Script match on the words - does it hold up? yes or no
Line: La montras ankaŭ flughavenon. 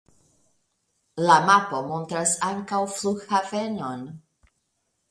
no